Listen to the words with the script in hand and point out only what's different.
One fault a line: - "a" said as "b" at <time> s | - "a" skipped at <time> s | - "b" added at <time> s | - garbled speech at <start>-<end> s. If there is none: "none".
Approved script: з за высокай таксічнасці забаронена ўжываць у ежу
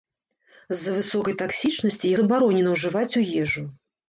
none